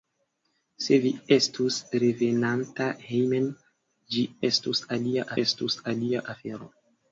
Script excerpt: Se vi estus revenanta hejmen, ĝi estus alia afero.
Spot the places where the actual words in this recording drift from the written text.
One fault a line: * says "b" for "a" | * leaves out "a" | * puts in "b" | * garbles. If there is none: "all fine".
* puts in "estus alia"